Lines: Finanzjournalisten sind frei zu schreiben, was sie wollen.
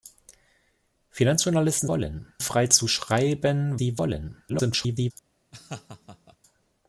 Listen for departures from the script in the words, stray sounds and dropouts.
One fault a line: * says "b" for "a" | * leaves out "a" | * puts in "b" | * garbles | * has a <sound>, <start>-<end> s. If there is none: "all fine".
* says "wollen" for "sind"
* leaves out "was"
* garbles
* has a laugh, 5.5-6.4 s